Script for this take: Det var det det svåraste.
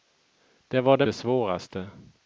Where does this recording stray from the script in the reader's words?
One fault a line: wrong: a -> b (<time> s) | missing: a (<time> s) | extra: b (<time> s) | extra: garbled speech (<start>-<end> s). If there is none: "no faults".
no faults